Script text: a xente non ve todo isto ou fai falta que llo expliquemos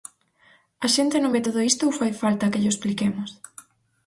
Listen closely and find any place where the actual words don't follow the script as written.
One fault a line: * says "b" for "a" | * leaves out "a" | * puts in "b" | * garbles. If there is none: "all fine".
all fine